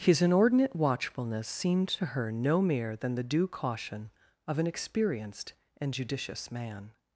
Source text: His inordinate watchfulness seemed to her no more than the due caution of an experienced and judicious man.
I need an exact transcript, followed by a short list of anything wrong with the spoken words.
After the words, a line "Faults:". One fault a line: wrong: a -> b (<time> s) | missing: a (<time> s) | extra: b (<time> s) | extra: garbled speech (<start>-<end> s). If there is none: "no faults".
His inordinate watchfulness seemed to her no mere than the due caution of an experienced and judicious man.
Faults:
wrong: more -> mere (2.6 s)